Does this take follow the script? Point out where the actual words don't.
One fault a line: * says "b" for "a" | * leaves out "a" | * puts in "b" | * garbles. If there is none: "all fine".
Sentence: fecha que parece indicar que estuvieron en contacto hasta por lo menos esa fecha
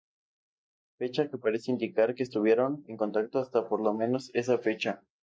all fine